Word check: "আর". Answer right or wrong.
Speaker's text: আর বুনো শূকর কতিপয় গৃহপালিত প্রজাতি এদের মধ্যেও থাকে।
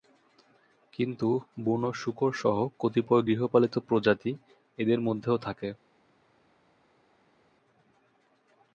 wrong